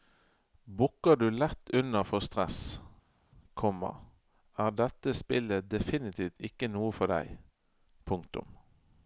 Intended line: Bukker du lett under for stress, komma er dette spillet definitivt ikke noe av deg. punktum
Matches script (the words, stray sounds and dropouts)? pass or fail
fail